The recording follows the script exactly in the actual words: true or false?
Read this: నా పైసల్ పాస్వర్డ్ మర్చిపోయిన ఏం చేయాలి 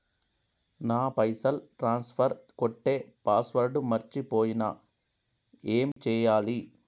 false